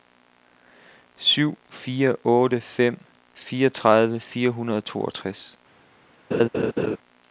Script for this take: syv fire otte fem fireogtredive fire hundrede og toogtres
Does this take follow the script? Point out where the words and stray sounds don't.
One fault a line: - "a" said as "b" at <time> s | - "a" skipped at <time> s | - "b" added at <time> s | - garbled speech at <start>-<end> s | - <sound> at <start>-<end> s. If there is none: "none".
- laugh at 6.3-7.0 s